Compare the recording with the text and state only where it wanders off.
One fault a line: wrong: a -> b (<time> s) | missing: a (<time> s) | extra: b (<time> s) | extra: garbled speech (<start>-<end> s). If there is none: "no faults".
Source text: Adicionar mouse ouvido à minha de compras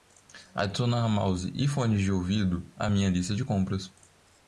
extra: e fones de (1.5 s)
extra: lista (3.1 s)